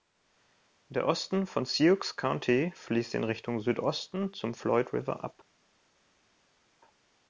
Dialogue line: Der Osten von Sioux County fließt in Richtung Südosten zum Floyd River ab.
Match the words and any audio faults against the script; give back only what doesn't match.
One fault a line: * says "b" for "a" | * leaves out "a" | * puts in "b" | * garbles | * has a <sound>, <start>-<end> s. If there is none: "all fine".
all fine